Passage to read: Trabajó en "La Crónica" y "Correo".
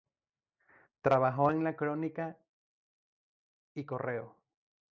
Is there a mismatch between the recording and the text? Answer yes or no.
no